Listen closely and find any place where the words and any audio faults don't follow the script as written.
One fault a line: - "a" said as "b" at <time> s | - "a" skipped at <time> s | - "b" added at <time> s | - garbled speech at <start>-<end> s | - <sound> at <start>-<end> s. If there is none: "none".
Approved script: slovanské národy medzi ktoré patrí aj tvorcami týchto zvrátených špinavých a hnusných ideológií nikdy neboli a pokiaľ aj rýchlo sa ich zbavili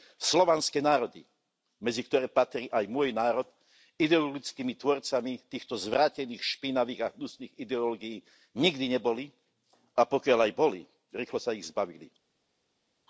- "môj národ ideologickými" added at 2.9 s
- "boli" added at 10.6 s